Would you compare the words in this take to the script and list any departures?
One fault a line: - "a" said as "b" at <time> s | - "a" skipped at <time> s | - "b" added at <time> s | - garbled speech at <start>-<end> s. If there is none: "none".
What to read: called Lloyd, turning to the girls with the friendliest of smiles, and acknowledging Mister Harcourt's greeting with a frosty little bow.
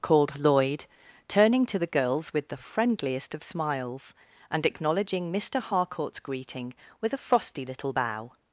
none